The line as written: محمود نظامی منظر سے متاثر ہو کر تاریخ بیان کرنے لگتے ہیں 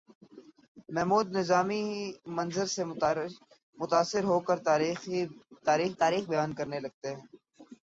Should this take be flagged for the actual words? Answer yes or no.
yes